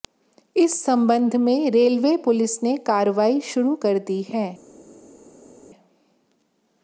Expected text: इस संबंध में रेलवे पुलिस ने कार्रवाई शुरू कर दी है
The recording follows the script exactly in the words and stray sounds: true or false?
true